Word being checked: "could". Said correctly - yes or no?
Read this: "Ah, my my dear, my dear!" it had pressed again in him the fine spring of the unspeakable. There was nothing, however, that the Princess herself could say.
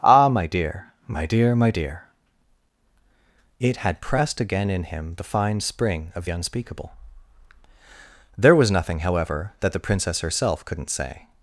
no